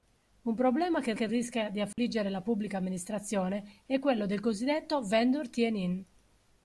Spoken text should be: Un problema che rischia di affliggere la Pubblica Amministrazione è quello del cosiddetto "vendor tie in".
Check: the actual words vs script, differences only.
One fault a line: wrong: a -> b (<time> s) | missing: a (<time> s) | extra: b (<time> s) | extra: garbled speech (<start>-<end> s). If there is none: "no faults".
extra: che (1.1 s)